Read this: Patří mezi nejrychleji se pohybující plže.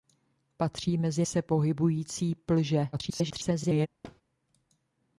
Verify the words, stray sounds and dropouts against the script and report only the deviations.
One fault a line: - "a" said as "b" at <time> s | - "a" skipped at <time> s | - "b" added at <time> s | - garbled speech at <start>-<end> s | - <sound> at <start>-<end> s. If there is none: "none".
- "nejrychleji" skipped at 1.2 s
- garbled speech at 2.9-3.9 s
- thud at 4.0-4.2 s